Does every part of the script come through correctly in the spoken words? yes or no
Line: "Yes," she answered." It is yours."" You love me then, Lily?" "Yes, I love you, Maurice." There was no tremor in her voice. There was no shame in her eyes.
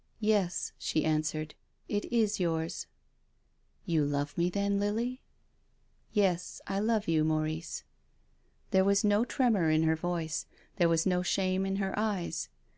yes